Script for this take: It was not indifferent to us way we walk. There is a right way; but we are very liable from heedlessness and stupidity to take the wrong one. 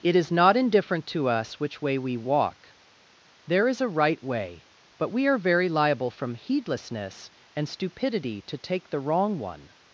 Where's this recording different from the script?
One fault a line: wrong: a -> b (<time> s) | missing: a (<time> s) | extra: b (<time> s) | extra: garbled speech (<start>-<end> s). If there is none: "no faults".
wrong: was -> is (0.1 s)
extra: which (1.6 s)